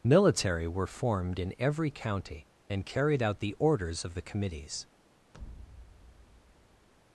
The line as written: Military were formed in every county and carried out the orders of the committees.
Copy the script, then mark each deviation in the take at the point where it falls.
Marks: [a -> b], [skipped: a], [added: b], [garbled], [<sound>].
Military were formed in every county and carried out the orders of the committees. [thud]